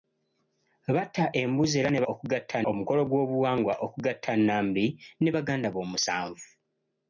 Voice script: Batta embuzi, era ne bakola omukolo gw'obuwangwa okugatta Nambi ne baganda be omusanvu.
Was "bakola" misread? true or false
true